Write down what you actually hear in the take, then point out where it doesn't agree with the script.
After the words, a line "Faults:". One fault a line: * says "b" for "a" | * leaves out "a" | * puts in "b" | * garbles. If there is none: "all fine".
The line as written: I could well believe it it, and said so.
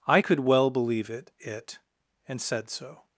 I could well believe it it, and said so.
Faults:
all fine